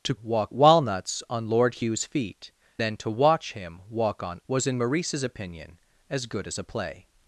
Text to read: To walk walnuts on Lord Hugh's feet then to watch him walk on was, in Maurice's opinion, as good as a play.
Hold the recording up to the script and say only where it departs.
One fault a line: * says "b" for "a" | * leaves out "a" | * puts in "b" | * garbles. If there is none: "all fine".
all fine